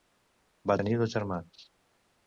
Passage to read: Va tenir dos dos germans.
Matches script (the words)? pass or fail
fail